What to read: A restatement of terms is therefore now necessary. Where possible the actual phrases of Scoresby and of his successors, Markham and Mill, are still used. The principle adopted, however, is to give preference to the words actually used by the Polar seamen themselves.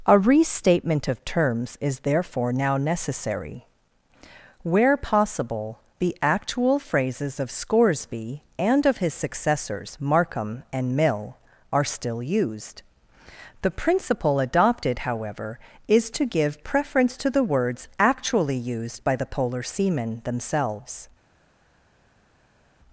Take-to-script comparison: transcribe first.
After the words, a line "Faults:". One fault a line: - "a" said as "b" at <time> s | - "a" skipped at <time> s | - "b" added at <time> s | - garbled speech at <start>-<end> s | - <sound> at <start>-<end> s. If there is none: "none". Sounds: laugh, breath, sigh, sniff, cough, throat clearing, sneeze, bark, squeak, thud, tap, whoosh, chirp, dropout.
A restatement of terms is therefore now necessary. Where possible the actual phrases of Scoresby and of his successors, Markham and Mill, are still used. The principle adopted, however, is to give preference to the words actually used by the Polar seamen themselves.
Faults:
none